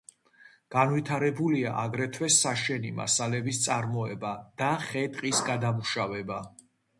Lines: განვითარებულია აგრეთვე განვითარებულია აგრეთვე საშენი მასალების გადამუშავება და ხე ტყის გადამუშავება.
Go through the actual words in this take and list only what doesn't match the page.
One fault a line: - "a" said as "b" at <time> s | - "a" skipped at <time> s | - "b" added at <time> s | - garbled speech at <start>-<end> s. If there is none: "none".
- "განვითარებულია აგრეთვე" skipped at 2.3 s
- "გადამუშავება" said as "წარმოება" at 3.7 s